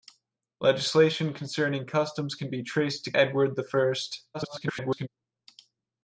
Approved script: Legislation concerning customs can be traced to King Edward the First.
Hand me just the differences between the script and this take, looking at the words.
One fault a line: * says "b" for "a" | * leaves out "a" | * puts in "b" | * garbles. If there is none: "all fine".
* leaves out "King"
* garbles